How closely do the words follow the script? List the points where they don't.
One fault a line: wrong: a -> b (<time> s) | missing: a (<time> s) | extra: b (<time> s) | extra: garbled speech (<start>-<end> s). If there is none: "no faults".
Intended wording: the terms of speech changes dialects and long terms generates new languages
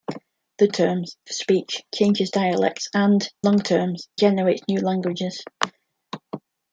no faults